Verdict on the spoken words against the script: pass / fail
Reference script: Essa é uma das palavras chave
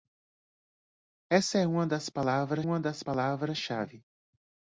fail